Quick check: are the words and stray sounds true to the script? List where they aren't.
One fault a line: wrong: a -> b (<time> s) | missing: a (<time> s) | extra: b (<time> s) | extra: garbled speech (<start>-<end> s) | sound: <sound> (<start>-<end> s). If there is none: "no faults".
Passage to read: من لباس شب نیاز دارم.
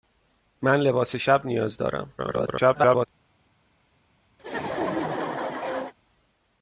extra: garbled speech (2.2-3.1 s)
sound: laugh (4.4-5.9 s)